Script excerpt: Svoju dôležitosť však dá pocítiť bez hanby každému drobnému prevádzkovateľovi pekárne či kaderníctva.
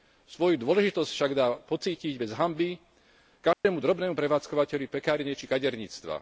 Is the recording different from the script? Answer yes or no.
no